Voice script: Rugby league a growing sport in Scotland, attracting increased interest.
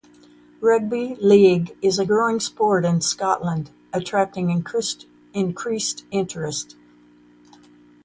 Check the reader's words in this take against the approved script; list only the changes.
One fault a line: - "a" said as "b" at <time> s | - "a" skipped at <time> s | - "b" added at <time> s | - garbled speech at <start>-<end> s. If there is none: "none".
- "is" added at 1.8 s